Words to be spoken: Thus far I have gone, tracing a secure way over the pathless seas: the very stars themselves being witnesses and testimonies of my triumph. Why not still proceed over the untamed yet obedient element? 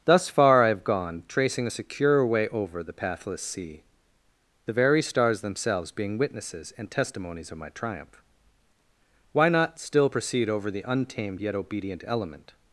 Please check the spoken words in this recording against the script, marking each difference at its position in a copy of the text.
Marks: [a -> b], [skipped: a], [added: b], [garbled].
Thus far I have gone, tracing a secure way over the pathless [seas: -> sea] the very stars themselves being witnesses and testimonies of my triumph. Why not still proceed over the untamed yet obedient element?